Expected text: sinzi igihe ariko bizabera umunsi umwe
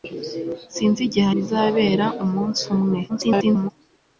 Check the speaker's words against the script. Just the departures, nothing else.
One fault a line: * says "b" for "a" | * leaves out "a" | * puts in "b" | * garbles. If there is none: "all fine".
* leaves out "ariko"
* garbles